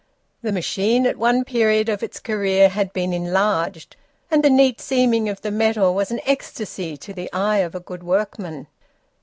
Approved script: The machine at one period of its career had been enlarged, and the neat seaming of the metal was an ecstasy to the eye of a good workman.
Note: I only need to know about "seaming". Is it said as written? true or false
true